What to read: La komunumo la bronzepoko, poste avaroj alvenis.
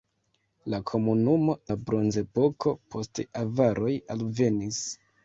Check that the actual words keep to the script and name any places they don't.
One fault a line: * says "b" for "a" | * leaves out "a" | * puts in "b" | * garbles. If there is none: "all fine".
all fine